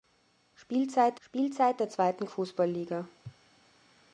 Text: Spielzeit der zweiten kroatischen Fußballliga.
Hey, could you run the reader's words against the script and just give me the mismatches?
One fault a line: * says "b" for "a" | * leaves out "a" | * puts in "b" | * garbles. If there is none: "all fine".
* puts in "spielzeit"
* leaves out "kroatischen"